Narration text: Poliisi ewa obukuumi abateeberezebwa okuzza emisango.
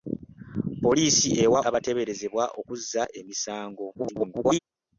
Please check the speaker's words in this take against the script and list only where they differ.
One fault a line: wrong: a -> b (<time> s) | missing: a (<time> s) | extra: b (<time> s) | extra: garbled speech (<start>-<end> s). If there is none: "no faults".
missing: obukuumi (1.6 s)
extra: garbled speech (3.9-4.6 s)